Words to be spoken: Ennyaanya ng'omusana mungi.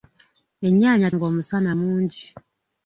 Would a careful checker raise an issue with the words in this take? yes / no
no